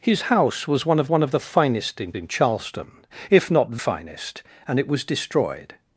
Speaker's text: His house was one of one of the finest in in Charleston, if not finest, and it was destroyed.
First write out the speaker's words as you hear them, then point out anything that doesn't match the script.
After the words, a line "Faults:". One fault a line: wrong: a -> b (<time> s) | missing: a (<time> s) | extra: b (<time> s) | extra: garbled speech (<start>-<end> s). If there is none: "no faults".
His house was one of one of the finest in in Charleston, if not finest, and it was destroyed.
Faults:
no faults